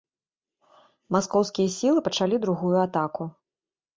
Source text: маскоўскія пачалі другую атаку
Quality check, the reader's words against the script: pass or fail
fail